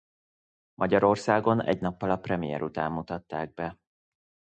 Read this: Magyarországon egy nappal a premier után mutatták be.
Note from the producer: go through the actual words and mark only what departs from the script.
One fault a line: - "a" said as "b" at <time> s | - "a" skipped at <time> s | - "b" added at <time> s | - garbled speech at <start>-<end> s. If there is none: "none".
none